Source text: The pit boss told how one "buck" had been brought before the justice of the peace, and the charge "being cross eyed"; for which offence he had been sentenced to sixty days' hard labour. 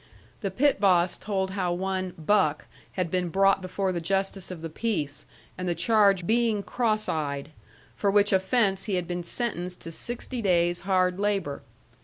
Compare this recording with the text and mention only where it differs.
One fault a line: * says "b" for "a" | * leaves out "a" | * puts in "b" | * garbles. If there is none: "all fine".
all fine